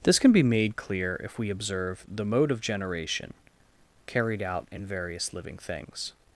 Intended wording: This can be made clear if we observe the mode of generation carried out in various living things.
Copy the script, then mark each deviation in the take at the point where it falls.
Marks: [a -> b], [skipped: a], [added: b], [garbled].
This can be made clear if we observe the mode of generation carried out in various living things.